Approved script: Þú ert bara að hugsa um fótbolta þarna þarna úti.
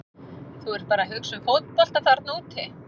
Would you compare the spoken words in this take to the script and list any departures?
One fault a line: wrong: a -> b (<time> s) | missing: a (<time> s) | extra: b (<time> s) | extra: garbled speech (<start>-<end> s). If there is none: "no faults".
missing: þarna (2.4 s)